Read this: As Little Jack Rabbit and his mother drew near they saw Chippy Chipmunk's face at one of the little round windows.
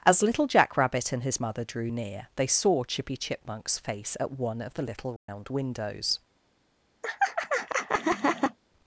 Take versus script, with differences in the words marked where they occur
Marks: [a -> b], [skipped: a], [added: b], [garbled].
As Little Jack Rabbit and his mother drew near they saw Chippy Chipmunk's face at one of the little round windows.